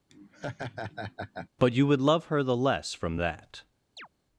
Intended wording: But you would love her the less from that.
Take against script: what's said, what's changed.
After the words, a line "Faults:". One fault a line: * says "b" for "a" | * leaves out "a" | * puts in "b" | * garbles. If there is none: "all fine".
But you would love her the less from that.
Faults:
all fine